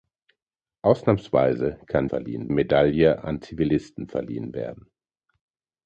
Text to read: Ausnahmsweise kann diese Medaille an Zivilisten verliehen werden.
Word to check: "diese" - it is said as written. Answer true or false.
false